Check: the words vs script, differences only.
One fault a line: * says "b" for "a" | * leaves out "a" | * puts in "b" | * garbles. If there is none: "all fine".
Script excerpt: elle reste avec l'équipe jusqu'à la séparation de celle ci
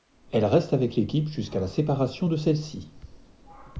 all fine